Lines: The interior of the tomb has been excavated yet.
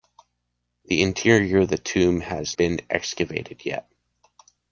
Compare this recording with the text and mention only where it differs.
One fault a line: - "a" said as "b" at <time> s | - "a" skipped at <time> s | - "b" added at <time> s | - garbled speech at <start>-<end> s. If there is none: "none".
none